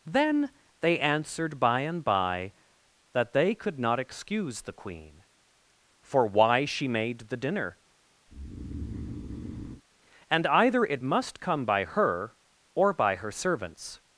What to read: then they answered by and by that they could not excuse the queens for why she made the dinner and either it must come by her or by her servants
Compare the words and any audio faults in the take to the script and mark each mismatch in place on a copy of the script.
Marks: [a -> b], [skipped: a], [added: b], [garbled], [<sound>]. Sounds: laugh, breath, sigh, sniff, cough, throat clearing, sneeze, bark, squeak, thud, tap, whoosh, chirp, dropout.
then they answered by and by that they could not excuse the [queens -> queen] for why she made the dinner [breath] and either it must come by her or by her servants